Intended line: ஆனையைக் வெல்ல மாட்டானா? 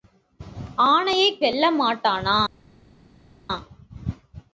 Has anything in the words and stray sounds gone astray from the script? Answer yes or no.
no